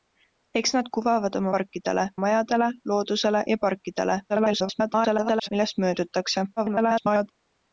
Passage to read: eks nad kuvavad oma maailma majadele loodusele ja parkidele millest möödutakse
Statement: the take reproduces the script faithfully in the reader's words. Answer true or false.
false